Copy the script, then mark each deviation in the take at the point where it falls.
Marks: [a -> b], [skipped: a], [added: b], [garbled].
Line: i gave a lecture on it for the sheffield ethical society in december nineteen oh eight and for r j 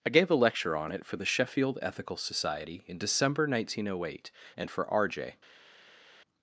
i gave a lecture on it for the sheffield ethical society in december nineteen oh eight and for r j